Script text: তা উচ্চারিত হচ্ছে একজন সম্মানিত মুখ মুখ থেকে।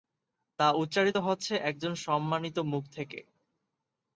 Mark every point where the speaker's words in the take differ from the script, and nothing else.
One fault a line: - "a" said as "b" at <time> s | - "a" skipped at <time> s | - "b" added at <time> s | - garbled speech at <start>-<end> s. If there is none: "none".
- "মুখ" skipped at 2.8 s